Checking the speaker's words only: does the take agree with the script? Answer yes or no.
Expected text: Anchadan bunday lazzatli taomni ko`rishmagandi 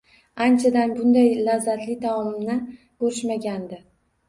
yes